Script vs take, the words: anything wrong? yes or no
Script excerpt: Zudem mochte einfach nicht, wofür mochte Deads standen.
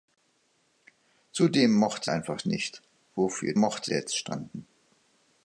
no